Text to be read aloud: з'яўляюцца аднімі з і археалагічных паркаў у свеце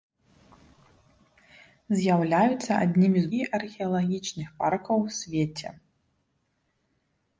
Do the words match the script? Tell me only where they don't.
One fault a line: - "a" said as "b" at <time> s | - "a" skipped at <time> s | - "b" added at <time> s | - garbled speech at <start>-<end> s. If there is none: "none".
none